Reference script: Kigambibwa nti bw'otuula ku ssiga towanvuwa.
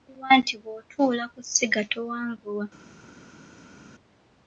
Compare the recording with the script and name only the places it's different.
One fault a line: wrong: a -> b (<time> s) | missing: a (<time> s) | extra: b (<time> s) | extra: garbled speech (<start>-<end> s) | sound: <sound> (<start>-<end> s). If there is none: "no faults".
no faults